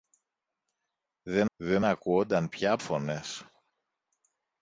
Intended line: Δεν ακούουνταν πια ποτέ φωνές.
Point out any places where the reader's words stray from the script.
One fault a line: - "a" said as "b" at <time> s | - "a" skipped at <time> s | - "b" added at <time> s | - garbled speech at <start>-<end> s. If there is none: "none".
- "δεν" added at 1.5 s
- "ποτέ" skipped at 2.8 s